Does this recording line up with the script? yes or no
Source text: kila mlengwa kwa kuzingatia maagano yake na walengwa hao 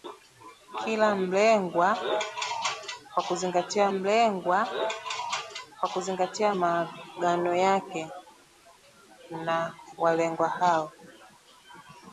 no